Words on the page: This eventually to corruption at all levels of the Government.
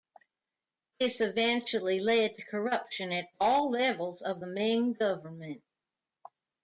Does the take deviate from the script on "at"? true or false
false